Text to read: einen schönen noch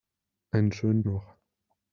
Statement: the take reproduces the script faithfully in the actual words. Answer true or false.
true